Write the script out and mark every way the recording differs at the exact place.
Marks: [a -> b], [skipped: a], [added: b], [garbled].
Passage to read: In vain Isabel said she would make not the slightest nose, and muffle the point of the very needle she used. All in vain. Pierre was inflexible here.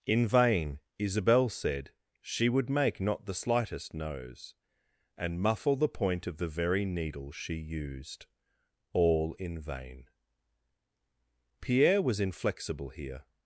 In vain Isabel said she would make not the slightest nose, and muffle the point of the very needle she used. All in vain. Pierre was inflexible here.